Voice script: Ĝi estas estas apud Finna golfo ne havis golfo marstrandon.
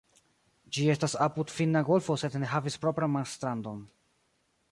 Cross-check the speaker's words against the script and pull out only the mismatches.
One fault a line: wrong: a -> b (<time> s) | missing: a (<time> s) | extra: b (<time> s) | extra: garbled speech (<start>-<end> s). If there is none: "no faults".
missing: estas (1.1 s)
extra: sed (2.2 s)
wrong: golfo -> propran (2.9 s)